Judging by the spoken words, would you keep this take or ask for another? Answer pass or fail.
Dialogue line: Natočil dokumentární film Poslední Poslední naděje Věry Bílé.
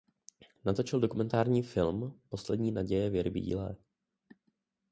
fail